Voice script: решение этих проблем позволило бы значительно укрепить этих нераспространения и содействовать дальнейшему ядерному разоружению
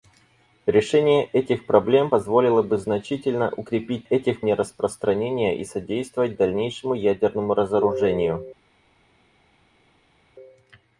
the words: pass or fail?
pass